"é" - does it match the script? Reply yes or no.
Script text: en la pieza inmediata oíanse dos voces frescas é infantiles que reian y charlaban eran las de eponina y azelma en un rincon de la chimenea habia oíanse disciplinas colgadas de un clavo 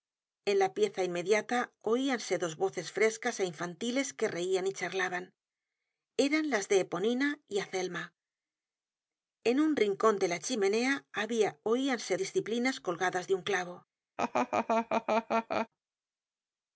yes